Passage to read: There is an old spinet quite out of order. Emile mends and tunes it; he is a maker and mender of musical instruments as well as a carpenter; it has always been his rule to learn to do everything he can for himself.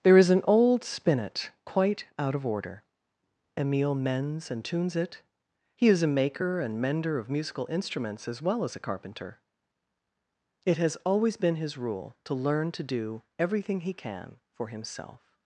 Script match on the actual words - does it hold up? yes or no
yes